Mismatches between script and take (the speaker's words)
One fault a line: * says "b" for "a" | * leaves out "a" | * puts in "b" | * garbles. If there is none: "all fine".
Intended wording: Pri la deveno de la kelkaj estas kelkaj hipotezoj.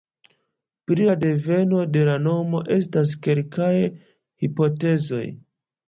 * says "nomo" for "kelkaj"